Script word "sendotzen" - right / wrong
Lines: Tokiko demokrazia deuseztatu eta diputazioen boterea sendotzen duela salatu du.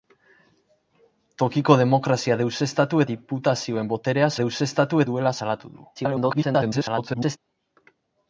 wrong